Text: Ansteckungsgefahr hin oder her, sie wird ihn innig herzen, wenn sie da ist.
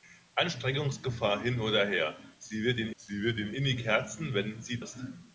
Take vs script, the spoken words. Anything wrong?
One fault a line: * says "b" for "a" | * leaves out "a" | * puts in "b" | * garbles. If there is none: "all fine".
* puts in "sie wird ihn"
* leaves out "da"